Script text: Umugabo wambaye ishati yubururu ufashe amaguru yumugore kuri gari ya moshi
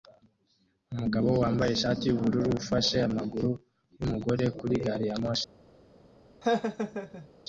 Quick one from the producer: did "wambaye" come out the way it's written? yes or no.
yes